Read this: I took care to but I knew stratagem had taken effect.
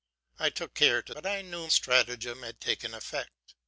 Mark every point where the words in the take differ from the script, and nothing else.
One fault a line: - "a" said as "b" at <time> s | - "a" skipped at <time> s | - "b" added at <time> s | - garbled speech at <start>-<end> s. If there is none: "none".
none